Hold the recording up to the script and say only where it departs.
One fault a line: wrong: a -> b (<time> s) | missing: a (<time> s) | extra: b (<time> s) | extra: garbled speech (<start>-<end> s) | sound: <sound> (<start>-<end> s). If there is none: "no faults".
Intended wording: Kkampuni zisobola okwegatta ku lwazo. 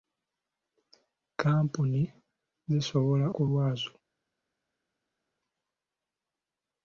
missing: okwegatta (3.3 s)